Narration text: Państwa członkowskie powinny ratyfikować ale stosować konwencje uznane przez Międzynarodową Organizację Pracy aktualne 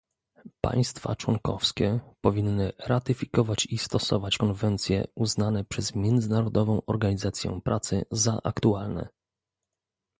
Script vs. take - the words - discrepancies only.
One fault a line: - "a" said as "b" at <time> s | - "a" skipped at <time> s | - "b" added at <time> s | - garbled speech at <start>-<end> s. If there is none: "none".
- "ale" said as "i" at 3.6 s
- "za" added at 8.1 s